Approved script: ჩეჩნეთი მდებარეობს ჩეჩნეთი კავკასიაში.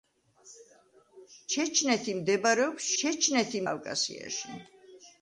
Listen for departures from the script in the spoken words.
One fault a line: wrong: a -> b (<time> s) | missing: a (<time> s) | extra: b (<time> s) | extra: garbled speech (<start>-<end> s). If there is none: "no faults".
no faults